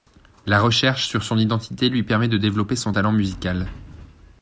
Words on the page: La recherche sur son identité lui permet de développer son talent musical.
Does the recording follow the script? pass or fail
pass